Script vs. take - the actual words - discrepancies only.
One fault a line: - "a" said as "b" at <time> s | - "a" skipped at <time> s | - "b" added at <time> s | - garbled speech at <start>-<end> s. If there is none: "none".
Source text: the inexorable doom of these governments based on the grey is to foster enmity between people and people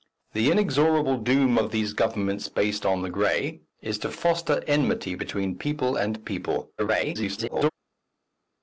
- garbled speech at 6.8-7.7 s